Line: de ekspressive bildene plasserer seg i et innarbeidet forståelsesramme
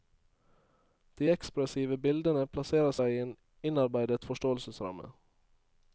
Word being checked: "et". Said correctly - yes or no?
no